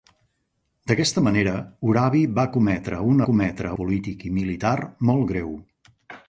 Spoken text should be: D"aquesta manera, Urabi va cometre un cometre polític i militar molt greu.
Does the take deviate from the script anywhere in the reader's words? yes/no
no